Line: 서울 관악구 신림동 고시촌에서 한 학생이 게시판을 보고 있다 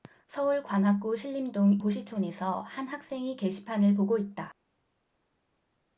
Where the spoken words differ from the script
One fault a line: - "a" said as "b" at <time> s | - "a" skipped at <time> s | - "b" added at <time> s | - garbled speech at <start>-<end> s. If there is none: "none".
none